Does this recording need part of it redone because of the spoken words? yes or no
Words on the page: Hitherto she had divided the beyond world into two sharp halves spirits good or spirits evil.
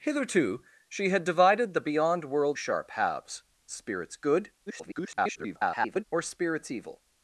yes